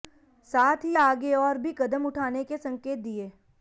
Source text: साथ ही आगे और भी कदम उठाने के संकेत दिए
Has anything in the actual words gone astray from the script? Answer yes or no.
no